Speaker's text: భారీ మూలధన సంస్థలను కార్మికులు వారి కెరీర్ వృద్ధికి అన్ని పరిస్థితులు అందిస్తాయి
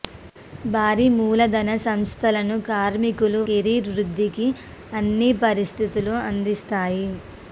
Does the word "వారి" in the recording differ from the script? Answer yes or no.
yes